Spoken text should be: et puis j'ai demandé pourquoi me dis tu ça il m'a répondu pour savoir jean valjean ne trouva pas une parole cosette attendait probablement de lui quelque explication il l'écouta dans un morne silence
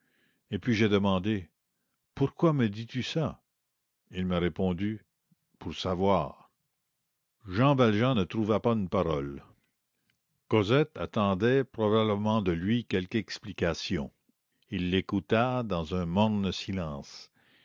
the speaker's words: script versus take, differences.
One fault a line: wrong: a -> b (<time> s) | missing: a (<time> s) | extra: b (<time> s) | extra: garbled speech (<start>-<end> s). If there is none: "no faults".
no faults